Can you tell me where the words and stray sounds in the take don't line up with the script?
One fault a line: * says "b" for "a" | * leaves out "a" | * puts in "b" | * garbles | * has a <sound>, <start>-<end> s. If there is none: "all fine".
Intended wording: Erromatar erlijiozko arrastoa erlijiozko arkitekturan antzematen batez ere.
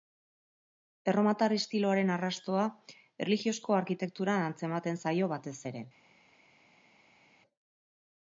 * says "estiloaren" for "erlijiozko"
* puts in "zaio"